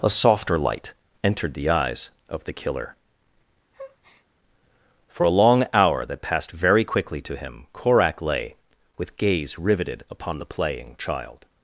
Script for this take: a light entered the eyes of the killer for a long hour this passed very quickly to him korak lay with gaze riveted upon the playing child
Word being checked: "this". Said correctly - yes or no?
no